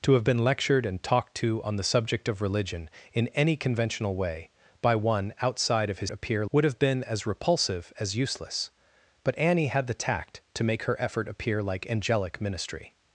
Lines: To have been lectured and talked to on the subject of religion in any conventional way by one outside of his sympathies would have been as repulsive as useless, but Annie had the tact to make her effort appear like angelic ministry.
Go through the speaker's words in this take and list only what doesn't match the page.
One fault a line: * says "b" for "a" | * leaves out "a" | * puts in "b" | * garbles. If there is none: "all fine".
* says "appear" for "sympathies"